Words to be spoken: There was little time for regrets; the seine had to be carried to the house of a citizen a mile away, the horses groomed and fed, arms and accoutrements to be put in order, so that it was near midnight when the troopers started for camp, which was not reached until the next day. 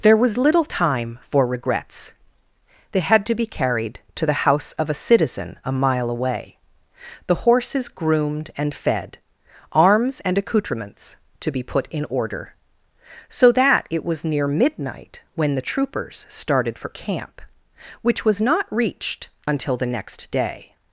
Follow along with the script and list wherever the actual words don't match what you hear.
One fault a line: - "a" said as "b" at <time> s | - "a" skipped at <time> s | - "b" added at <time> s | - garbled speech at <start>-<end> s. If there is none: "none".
- "the seine" said as "they" at 2.9 s